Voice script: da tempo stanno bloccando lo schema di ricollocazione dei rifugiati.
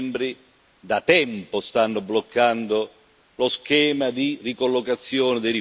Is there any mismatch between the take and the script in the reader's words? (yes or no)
no